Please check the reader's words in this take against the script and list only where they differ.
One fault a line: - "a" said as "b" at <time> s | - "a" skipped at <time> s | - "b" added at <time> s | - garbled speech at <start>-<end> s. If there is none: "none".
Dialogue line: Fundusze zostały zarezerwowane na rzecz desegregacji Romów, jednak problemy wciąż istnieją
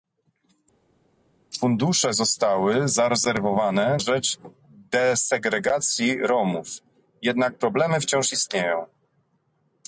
- "na" skipped at 4.0 s